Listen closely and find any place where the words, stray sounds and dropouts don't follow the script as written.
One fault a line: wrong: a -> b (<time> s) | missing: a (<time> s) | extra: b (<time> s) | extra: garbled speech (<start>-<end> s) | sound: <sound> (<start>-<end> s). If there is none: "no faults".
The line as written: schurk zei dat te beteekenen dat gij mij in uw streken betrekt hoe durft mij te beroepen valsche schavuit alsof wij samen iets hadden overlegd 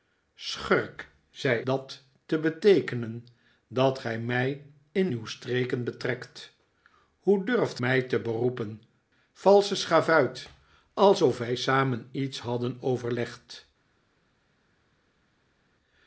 no faults